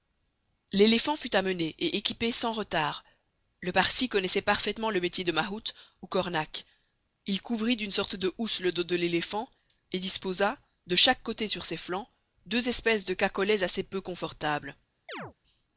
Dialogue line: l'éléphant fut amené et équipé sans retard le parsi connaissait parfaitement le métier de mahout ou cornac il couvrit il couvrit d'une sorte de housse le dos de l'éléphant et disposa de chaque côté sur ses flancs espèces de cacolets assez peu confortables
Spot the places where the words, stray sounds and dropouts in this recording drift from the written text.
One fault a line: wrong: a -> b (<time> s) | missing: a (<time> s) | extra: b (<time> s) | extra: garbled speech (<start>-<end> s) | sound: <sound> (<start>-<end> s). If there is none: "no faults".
missing: il couvrit (7.7 s)
extra: deux (12.5 s)
sound: chirp (15.1-15.3 s)